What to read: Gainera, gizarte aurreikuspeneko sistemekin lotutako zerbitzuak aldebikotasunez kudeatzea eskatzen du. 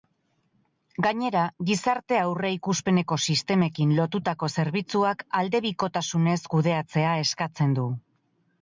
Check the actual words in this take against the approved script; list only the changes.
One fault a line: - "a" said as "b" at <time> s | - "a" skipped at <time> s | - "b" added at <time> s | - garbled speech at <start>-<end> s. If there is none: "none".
none